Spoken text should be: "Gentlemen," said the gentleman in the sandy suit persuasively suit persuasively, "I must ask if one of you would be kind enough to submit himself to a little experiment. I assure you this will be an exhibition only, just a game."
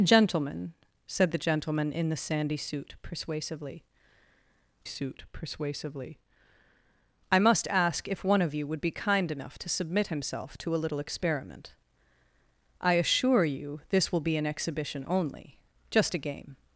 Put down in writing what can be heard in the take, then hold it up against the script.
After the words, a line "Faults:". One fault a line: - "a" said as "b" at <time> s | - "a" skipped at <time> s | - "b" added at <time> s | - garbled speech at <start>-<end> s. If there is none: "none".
"Gentlemen," said the gentleman in the sandy suit persuasively suit persuasively, "I must ask if one of you would be kind enough to submit himself to a little experiment. I assure you this will be an exhibition only, just a game."
Faults:
none